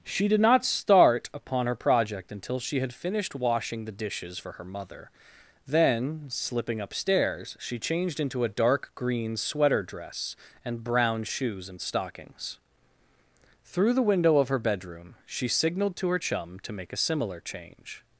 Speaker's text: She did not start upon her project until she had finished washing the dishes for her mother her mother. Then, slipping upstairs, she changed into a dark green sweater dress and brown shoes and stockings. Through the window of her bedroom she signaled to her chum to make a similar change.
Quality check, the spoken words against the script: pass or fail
fail